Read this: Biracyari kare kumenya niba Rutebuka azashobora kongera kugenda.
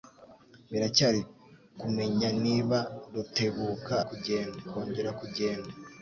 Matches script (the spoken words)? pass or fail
fail